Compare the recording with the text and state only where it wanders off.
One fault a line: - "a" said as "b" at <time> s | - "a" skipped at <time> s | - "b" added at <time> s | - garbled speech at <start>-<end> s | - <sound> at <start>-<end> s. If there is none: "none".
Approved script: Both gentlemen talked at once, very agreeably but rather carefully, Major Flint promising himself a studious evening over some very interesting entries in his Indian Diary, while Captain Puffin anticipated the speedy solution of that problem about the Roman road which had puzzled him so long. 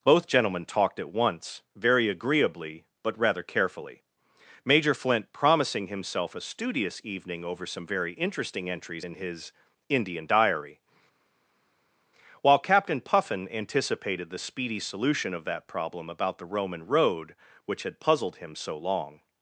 none